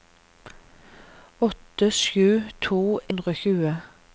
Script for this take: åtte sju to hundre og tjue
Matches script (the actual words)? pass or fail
pass